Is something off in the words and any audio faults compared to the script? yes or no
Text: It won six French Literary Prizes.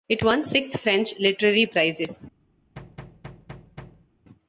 yes